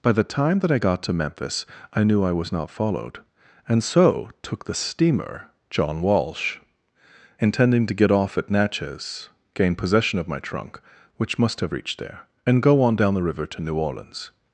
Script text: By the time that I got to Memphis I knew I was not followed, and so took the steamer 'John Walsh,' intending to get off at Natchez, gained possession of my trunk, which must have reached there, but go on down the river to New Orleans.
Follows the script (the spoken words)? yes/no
no